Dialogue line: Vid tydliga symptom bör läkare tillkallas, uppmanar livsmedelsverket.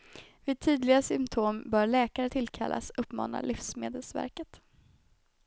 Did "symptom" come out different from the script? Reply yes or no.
no